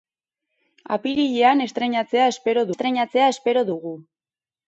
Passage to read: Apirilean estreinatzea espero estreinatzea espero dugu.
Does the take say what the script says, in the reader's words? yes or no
yes